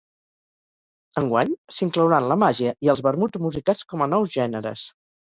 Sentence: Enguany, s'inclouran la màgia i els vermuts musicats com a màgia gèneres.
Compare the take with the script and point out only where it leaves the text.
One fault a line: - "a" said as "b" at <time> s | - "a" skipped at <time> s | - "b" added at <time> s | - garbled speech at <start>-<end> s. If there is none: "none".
- "màgia" said as "nous" at 4.1 s